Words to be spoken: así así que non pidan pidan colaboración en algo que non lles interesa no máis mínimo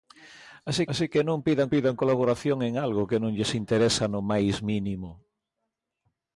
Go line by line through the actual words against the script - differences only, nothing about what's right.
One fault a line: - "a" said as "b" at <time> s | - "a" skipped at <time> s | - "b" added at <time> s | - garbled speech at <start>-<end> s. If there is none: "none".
none